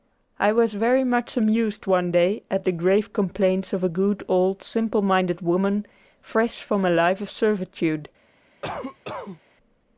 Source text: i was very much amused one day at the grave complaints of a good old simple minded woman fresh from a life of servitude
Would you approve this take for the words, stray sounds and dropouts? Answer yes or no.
no